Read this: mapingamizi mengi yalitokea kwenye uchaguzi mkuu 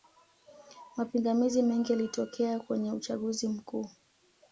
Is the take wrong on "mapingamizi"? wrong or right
right